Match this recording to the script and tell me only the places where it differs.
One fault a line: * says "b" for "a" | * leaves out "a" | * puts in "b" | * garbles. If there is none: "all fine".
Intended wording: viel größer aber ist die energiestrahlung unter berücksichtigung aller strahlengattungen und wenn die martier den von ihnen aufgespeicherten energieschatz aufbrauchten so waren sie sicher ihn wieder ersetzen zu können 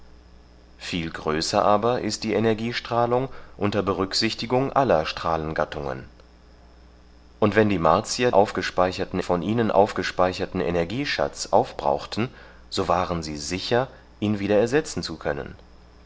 * says "aufgespeicherten" for "den"